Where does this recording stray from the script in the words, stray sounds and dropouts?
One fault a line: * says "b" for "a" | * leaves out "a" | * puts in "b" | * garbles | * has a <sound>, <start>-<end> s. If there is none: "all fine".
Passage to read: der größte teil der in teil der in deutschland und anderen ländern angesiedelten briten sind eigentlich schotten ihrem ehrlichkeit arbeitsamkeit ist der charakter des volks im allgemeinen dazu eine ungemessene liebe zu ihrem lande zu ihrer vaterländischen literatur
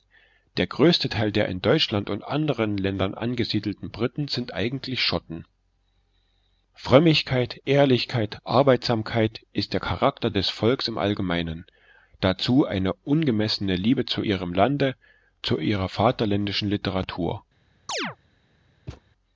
* leaves out "teil der in"
* says "frömmigkeit" for "ihrem"
* has a chirp, 17.9-18.2 s
* has a thud, 18.9-19.0 s